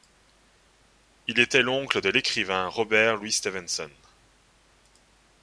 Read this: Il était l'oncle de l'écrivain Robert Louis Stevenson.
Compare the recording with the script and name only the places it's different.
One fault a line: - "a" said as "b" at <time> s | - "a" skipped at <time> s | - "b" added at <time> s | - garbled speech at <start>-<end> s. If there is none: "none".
none